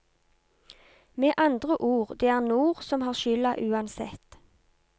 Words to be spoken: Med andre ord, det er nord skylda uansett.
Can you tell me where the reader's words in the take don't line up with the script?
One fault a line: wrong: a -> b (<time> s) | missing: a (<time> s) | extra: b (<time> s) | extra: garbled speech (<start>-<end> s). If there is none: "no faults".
extra: som har (2.8 s)